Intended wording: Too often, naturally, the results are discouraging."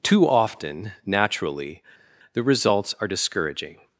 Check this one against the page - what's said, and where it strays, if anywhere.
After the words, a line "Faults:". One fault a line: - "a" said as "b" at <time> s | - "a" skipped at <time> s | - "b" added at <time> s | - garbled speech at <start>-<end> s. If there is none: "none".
Too often, naturally, the results are discouraging."
Faults:
none